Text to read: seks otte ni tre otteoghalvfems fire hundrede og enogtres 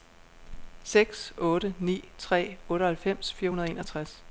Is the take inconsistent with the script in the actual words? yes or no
no